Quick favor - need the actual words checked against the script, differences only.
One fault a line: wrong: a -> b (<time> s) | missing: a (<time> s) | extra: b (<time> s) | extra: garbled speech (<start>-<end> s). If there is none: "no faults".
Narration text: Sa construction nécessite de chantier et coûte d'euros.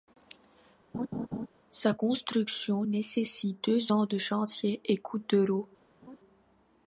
extra: deux ans (3.6 s)